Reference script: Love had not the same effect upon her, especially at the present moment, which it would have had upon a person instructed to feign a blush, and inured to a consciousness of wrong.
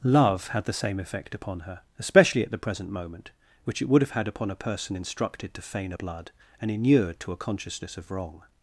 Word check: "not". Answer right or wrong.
wrong